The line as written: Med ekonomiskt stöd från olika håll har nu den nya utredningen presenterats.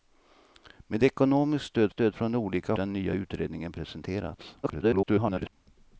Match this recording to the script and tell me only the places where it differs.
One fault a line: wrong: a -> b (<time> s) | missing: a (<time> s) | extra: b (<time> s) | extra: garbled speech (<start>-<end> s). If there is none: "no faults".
extra: stöd (1.9 s)
missing: håll har nu (2.7 s)
extra: garbled speech (4.6-5.5 s)